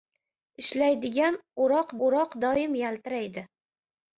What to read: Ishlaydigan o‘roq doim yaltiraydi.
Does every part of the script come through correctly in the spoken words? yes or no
no